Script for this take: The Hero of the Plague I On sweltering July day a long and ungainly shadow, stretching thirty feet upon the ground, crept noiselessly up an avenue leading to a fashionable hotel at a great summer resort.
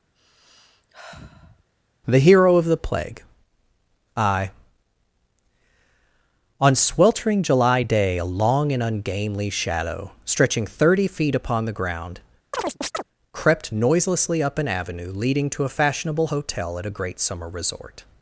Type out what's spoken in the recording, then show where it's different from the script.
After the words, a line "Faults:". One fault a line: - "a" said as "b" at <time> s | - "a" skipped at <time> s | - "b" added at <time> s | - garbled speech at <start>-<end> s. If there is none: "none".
The Hero of the Plague I On sweltering July day a long and ungainly shadow, stretching thirty feet upon the ground, crept noiselessly up an avenue leading to a fashionable hotel at a great summer resort.
Faults:
none